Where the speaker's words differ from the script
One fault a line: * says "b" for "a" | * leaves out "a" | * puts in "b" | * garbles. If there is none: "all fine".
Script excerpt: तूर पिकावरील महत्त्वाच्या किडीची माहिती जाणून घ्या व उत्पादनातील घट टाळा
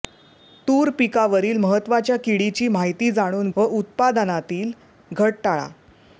* leaves out "घ्या"